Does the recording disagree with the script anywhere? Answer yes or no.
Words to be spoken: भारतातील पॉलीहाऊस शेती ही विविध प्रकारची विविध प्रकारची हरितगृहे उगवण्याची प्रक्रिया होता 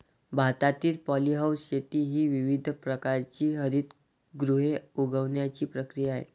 yes